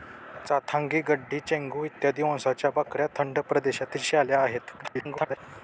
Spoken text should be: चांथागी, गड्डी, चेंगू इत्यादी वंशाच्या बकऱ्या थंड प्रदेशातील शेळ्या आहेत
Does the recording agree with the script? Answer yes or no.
no